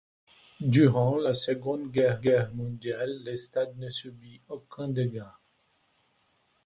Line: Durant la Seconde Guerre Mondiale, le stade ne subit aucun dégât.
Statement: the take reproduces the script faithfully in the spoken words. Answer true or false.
false